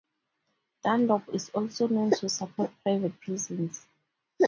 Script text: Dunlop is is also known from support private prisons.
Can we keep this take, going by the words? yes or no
no